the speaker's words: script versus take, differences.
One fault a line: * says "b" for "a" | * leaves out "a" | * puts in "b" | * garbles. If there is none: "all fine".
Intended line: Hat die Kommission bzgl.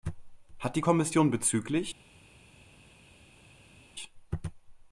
all fine